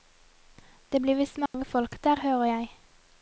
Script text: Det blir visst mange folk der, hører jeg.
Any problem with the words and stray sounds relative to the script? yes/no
yes